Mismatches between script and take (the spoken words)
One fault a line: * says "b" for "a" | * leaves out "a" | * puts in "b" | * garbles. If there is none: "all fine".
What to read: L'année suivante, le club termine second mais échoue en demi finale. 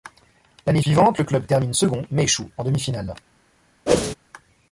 all fine